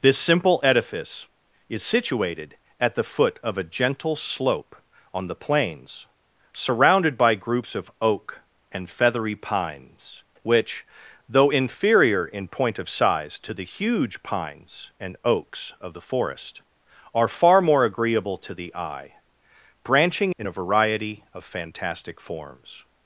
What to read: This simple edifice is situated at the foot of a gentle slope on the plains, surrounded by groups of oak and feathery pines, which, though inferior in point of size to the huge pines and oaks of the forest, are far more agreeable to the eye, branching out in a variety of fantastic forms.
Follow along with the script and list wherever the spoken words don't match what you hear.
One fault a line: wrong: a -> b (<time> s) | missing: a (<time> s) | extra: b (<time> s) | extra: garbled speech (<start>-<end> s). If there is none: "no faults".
missing: out (20.4 s)